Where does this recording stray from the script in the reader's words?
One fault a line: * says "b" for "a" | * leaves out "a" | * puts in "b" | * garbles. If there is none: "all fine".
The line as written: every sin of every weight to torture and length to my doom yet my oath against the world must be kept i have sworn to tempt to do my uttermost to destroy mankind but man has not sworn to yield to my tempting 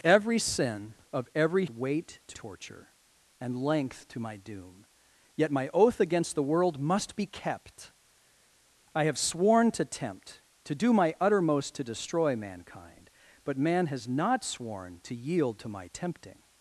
all fine